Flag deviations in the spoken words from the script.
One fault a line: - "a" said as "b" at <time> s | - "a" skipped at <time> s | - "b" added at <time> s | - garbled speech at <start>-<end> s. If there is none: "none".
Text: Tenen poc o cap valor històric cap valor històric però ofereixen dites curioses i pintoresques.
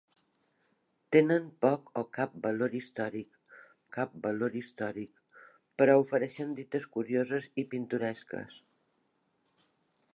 none